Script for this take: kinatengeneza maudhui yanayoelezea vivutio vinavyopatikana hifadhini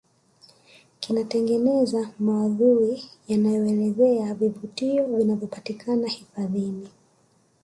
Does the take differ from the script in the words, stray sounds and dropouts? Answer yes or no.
no